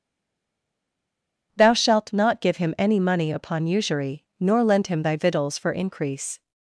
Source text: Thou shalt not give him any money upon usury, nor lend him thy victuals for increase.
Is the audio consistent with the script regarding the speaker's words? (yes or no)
yes